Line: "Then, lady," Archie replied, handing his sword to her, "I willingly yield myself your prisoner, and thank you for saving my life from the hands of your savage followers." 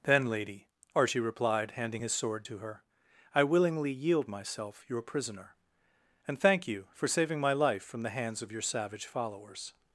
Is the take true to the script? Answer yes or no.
yes